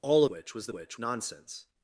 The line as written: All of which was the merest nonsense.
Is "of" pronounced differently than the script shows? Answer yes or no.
yes